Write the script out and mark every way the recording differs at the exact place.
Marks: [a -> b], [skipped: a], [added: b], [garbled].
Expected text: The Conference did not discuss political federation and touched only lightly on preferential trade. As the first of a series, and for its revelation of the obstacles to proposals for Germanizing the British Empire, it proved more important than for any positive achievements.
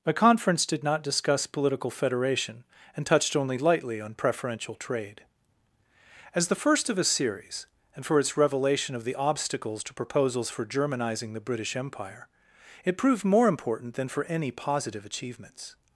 The Conference did not discuss political federation and touched only lightly on preferential trade. As the first of a series, and for its revelation of the obstacles to proposals for Germanizing the British Empire, it proved more important than for any positive achievements.